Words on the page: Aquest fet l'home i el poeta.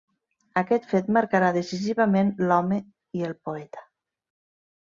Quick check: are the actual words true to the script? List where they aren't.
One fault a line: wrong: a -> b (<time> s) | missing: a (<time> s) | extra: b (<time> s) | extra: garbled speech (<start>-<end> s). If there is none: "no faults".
extra: marcarà decisivament (1.2 s)